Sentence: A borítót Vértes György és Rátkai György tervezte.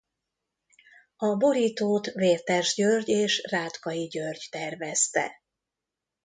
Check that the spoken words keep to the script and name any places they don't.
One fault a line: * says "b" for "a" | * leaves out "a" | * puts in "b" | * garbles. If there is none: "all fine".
all fine